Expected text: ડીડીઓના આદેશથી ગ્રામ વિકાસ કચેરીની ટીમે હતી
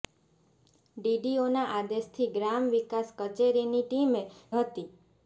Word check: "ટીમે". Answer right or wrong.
right